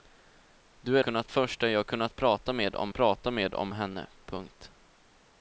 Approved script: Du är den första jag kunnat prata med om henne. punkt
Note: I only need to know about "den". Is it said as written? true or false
false